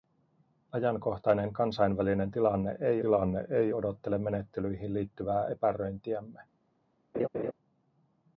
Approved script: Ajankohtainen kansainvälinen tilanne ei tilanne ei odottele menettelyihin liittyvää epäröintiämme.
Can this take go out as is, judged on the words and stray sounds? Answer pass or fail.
fail